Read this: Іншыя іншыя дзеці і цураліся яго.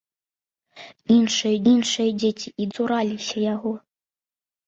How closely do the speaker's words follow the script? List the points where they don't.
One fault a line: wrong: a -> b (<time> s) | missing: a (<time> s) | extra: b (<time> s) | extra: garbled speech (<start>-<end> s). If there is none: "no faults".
no faults